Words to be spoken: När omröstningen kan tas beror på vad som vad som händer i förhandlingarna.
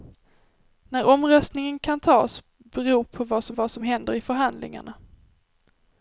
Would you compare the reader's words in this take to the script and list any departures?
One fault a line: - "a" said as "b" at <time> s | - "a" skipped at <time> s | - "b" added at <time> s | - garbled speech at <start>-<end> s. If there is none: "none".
none